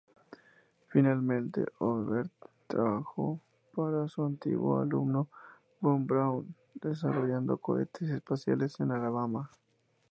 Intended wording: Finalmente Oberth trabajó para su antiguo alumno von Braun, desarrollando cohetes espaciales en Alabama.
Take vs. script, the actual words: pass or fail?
pass